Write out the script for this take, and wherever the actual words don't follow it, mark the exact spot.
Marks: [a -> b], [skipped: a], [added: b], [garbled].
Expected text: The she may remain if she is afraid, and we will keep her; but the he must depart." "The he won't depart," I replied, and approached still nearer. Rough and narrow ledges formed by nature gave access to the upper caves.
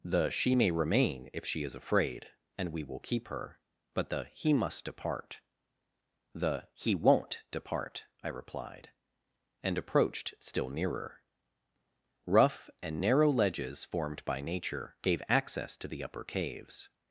The she may remain if she is afraid, and we will keep her; but the he must depart." "The he won't depart," I replied, and approached still nearer. Rough and narrow ledges formed by nature gave access to the upper caves.